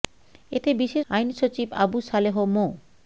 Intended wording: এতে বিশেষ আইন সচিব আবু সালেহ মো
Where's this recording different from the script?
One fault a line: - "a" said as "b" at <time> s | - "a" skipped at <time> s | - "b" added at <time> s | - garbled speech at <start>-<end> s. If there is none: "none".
none